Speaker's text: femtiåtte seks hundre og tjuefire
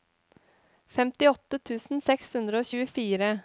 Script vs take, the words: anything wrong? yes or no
yes